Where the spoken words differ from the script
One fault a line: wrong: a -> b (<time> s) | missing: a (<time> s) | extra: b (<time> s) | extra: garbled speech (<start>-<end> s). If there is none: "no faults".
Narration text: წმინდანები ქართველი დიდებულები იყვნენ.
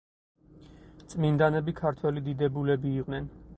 no faults